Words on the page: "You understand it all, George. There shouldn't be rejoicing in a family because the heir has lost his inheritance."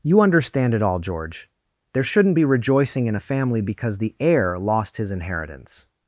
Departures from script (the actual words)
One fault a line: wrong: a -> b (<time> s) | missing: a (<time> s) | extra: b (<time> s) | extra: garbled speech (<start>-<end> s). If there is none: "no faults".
missing: has (4.6 s)